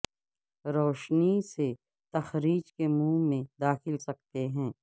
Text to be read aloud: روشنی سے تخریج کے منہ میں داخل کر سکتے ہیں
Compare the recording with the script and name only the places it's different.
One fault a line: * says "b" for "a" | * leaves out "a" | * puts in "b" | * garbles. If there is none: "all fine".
* leaves out "کر"